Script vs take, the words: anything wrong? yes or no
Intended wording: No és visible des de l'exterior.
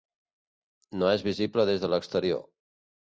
no